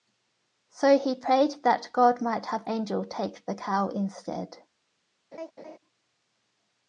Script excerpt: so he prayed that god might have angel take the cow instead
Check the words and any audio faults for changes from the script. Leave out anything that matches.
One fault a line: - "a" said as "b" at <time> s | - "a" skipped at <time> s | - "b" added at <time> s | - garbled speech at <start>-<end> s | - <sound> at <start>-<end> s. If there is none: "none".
- laugh at 5.3-5.8 s